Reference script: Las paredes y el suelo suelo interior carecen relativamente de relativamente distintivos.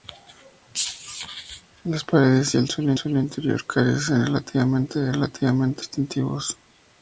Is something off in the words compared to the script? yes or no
no